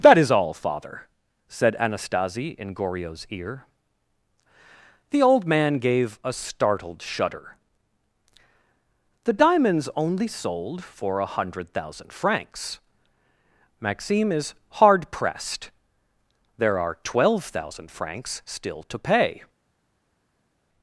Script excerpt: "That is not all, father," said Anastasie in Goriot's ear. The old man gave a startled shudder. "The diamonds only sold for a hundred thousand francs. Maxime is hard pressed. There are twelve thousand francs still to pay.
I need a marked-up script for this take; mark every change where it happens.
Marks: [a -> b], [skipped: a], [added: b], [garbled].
"That is [skipped: not] all, father," said Anastasie in Goriot's ear. The old man gave a startled shudder. "The diamonds only sold for a hundred thousand francs. Maxime is hard pressed. There are twelve thousand francs still to pay.